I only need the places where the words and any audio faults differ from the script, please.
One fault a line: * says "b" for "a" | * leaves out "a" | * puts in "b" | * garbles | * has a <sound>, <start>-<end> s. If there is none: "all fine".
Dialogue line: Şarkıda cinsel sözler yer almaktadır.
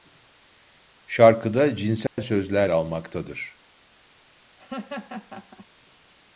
* has a dropout, 2.1-2.2 s
* leaves out "yer"
* has a laugh, 4.6-5.7 s